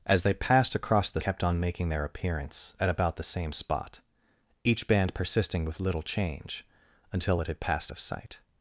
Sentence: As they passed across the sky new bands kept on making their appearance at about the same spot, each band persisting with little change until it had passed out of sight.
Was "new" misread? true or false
true